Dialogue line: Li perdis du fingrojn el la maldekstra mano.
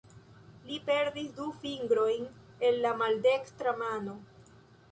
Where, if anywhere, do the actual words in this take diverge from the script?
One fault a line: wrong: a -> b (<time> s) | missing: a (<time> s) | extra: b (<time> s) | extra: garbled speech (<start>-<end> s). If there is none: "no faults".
no faults